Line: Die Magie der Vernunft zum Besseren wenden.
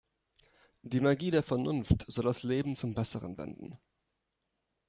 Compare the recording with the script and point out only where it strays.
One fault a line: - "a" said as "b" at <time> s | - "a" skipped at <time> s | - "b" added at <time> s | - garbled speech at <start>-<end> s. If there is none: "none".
- "soll das Leben" added at 2.1 s